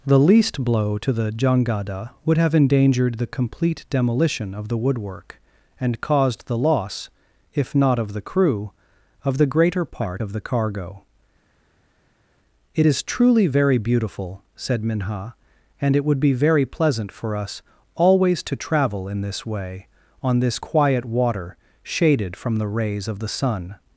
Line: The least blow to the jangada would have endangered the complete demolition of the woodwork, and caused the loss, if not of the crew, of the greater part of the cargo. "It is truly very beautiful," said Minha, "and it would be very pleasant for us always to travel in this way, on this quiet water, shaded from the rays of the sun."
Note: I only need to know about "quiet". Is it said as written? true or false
true